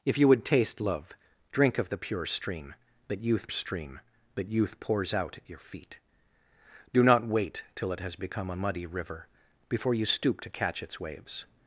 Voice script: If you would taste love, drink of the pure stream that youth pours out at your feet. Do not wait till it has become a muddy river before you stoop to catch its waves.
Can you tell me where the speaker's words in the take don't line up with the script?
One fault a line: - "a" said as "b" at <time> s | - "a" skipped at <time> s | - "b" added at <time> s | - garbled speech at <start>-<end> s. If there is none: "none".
- "stream that youth" added at 3.5 s